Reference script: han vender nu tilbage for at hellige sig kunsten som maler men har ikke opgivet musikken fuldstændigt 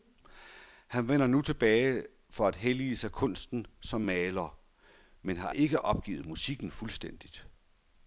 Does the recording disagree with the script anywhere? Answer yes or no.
no